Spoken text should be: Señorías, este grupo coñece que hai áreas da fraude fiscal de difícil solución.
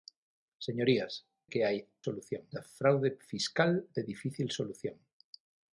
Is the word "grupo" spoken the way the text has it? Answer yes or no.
no